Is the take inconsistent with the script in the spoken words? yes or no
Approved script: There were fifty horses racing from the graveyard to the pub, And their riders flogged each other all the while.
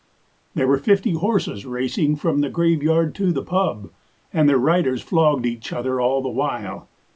no